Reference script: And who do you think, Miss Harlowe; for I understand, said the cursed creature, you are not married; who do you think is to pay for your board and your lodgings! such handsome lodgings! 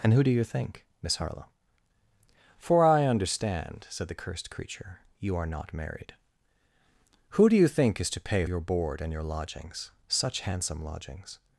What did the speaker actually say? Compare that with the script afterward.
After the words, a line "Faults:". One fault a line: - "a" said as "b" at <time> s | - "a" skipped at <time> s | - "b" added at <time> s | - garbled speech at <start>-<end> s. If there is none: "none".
And who do you think, Miss Harlowe; for I understand, said the cursed creature, you are not married; who do you think is to pay your board and your lodgings! such handsome lodgings!
Faults:
- "for" skipped at 8.5 s